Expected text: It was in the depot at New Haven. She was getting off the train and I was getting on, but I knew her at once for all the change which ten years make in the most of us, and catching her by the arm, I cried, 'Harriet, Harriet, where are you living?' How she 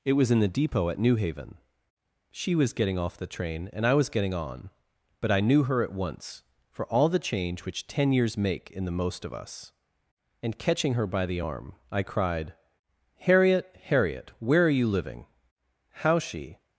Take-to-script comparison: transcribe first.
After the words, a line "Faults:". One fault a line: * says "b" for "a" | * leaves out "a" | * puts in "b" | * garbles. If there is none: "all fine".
It was in the depot at New Haven. She was getting off the train and I was getting on, but I knew her at once for all the change which ten years make in the most of us, and catching her by the arm, I cried, 'Harriet, Harriet, where are you living?' How she
Faults:
all fine